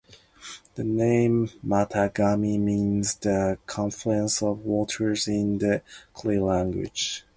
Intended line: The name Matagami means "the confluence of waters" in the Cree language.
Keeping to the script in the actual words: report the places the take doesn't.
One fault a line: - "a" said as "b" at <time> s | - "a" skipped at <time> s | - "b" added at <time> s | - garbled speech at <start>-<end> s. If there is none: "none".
none